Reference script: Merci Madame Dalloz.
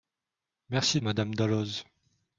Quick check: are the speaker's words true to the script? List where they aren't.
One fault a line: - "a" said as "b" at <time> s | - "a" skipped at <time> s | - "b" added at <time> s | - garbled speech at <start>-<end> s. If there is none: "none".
none